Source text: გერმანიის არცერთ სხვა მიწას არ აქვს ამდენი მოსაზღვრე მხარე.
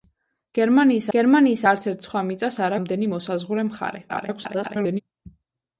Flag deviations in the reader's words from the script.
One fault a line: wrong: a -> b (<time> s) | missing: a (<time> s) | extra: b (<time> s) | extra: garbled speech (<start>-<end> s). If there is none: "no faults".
extra: გერმანიის (1.2 s)
missing: აქვს (2.8 s)
extra: garbled speech (4.1-5.0 s)